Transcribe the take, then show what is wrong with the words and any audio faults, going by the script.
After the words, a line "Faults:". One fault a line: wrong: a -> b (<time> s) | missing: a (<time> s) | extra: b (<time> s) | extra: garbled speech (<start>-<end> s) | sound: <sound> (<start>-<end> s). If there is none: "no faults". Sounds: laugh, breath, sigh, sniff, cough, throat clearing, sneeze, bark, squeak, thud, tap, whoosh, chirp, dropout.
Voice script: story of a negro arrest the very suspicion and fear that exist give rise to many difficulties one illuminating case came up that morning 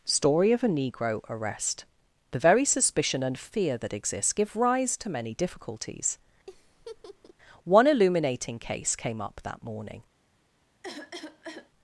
story of a negro arrest the very suspicion and fear that exists give rise to many difficulties one illuminating case came up that morning
Faults:
wrong: exist -> exists (3.9 s)
sound: laugh (6.5-7.3 s)
sound: cough (10.8-11.7 s)